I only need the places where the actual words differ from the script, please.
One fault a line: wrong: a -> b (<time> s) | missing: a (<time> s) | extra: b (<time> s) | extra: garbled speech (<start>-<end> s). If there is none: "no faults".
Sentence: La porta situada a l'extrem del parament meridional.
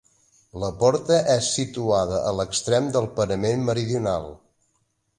extra: és (1.3 s)